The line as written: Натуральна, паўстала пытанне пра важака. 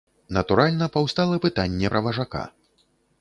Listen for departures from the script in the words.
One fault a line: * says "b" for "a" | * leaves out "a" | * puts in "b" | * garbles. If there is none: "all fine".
all fine